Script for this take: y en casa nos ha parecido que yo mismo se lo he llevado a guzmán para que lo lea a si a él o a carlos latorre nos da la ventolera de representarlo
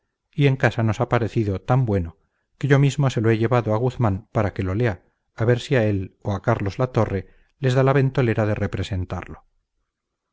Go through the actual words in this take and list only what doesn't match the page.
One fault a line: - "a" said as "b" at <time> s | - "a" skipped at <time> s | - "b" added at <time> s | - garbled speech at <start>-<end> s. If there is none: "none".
- "tan bueno" added at 1.6 s
- "ver" added at 5.5 s
- "nos" said as "les" at 7.6 s